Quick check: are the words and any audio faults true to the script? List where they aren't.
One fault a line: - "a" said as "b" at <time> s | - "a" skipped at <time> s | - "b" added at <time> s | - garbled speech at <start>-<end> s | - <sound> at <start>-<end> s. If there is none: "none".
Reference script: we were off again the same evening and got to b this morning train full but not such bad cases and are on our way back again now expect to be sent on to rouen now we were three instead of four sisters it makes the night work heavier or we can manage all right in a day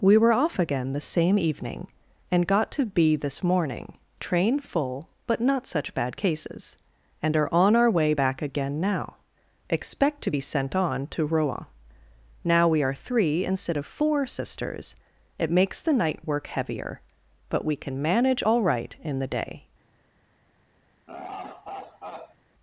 - "were" said as "are" at 12.8 s
- "or" said as "but" at 17.5 s
- "a" said as "the" at 19.2 s
- laugh at 21.1-22.4 s